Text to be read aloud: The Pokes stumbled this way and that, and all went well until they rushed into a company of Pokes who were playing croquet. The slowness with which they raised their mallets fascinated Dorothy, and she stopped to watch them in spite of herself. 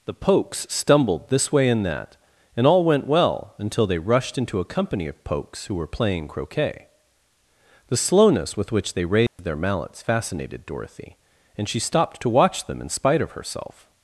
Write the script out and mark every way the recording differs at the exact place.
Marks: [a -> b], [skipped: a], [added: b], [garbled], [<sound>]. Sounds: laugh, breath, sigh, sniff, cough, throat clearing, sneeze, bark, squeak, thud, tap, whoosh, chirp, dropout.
The Pokes stumbled this way and that, and all went well until they rushed into a company of Pokes who were playing croquet. The slowness with which they raised [dropout] their mallets fascinated Dorothy, and she stopped to watch them in spite of herself.